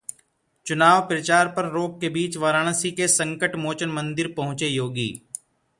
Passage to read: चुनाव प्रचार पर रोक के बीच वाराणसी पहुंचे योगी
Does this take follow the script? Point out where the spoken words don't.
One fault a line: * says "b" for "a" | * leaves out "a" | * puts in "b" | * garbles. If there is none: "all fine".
* puts in "के संकटमोचन मंदिर"